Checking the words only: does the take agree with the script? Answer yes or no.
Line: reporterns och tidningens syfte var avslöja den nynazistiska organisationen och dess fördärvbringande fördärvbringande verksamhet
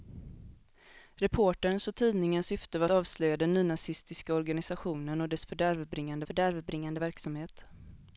yes